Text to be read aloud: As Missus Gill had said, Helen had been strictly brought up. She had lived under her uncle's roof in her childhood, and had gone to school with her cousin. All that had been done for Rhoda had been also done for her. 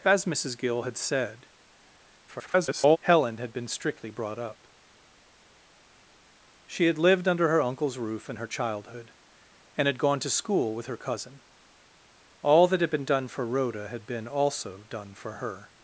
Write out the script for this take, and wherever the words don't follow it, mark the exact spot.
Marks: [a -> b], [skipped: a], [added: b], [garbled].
As Missus Gill had said, [garbled] Helen had been strictly brought up. She had lived under her uncle's roof in her childhood, and had gone to school with her cousin. All that had been done for Rhoda had been also done for her.